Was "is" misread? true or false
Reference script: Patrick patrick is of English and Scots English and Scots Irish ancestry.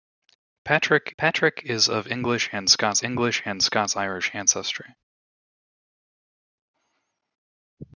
false